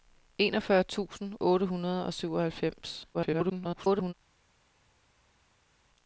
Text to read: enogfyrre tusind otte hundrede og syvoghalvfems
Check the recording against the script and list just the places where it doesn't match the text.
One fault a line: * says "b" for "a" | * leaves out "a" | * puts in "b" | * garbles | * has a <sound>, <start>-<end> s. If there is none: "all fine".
* garbles